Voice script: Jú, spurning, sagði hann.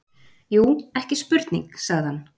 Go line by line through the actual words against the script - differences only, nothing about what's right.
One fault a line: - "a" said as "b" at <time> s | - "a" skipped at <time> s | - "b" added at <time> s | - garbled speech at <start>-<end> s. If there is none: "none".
- "ekki" added at 1.0 s